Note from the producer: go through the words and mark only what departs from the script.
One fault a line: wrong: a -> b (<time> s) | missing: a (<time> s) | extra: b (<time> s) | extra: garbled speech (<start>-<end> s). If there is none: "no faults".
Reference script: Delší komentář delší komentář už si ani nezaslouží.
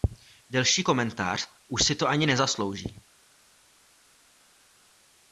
missing: delší komentář (1.5 s)
extra: to (1.9 s)